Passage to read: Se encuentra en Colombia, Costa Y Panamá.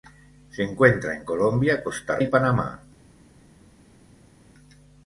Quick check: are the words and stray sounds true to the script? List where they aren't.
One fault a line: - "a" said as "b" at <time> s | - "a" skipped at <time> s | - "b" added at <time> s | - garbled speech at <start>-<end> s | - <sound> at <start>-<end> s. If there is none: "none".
none